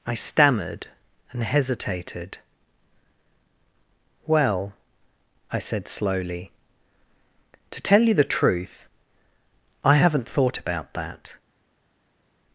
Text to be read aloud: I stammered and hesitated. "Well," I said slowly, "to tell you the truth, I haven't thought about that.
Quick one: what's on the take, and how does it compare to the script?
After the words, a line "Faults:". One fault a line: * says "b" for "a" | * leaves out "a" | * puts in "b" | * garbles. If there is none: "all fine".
I stammered and hesitated. "Well," I said slowly, "to tell you the truth, I haven't thought about that.
Faults:
all fine